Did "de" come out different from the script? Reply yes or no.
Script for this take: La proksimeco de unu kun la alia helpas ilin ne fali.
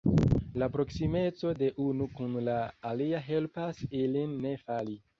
no